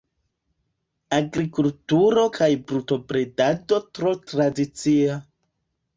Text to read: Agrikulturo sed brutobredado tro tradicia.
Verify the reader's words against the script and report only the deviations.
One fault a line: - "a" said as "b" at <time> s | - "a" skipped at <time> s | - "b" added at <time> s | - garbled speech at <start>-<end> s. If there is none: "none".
- "sed" said as "kaj" at 2.3 s